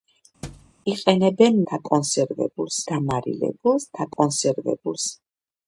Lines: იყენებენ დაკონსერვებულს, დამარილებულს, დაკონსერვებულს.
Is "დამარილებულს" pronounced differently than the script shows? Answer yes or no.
no